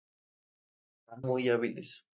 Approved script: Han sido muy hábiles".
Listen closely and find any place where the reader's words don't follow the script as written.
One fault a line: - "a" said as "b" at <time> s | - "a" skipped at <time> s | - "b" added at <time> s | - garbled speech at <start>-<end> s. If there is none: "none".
- "sido" skipped at 1.2 s